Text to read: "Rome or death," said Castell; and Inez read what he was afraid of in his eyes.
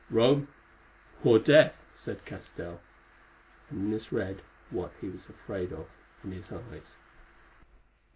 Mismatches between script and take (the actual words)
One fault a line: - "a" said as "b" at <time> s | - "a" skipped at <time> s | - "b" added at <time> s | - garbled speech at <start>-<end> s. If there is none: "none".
none